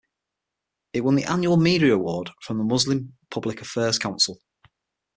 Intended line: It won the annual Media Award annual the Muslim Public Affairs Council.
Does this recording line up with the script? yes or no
no